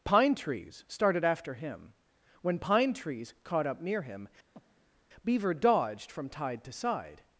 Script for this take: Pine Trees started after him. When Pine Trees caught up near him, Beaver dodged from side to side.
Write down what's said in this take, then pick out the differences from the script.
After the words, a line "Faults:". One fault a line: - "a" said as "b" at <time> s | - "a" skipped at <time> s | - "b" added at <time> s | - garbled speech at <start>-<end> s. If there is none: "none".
Pine Trees started after him. When Pine Trees caught up near him, Beaver dodged from tide to side.
Faults:
- "side" said as "tide" at 6.3 s